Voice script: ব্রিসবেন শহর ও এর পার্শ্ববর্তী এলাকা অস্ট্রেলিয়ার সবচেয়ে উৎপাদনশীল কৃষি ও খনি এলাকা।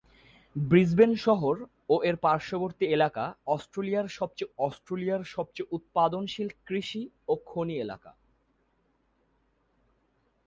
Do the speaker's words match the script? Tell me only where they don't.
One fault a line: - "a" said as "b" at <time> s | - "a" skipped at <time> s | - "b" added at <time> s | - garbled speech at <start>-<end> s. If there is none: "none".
- "অস্ট্রেলিয়ার সবচেয়ে" added at 4.6 s